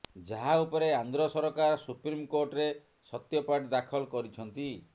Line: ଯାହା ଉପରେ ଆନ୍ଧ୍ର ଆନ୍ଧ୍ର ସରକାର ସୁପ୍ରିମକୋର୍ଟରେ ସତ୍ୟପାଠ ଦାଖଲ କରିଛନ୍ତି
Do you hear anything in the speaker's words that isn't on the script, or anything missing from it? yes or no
yes